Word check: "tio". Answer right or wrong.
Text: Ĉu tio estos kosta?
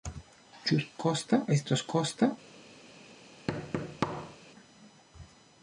wrong